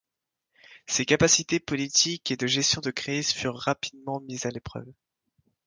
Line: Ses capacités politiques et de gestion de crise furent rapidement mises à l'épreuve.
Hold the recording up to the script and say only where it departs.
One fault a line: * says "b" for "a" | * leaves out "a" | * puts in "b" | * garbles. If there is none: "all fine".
all fine